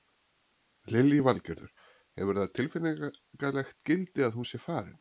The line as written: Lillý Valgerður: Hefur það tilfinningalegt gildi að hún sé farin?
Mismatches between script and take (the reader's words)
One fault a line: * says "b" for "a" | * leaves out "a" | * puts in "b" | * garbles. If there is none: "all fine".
all fine